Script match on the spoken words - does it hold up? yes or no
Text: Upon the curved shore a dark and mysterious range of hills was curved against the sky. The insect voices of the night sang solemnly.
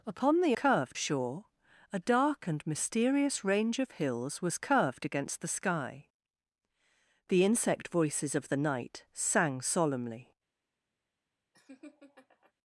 yes